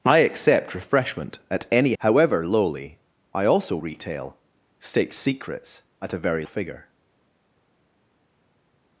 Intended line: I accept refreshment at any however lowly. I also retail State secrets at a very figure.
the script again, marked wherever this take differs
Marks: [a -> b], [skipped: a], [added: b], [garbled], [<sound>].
I accept refreshment at any however lowly. I also retail State secrets at a very figure.